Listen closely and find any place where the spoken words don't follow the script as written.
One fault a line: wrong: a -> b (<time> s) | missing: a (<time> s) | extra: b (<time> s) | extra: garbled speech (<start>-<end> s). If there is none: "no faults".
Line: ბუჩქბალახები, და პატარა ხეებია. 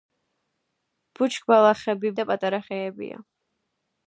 no faults